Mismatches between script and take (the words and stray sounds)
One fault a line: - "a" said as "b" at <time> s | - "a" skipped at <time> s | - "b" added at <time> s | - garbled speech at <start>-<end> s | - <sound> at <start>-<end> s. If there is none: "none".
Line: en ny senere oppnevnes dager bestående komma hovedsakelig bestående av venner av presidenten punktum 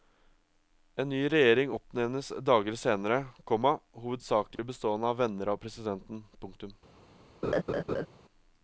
- "senere" said as "regjering" at 1.3 s
- "bestående" said as "senere" at 2.8 s
- dropout at 4.6-4.6 s
- laugh at 7.4-8.1 s